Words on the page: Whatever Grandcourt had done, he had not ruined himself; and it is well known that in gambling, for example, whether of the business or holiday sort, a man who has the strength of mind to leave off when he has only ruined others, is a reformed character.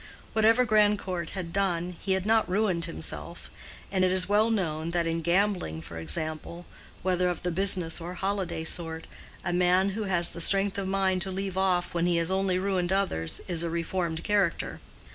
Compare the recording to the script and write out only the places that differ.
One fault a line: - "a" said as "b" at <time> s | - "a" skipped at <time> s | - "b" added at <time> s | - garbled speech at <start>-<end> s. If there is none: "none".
none